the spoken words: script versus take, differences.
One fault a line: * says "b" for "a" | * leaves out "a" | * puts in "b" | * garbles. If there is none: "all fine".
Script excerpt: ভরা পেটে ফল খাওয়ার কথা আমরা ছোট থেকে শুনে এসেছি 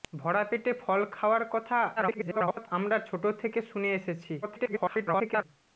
* garbles
* garbles